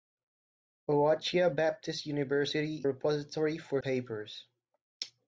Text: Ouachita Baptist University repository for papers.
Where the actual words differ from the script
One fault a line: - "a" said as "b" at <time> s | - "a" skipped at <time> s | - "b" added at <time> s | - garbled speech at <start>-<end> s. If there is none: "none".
none